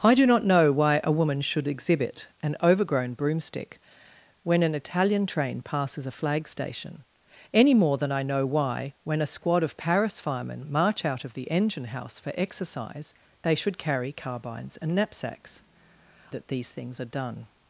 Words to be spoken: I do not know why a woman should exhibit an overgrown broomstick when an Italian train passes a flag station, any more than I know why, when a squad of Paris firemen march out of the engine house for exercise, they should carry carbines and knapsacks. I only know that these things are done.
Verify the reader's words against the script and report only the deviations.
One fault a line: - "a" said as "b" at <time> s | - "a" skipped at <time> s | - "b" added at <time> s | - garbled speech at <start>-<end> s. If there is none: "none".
- "I only know" skipped at 15.6 s